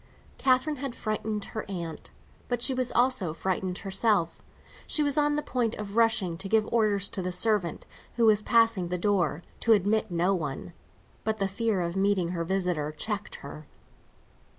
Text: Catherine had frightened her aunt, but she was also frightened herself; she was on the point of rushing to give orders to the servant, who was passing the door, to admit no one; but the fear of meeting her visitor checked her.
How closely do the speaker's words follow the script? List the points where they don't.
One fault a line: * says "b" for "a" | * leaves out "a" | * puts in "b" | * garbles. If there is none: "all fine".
all fine